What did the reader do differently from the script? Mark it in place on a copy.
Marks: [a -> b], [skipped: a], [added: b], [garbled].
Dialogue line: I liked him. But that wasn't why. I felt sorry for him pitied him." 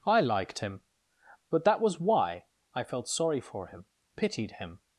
I liked him. But that [wasn't -> was] why. I felt sorry for him pitied him."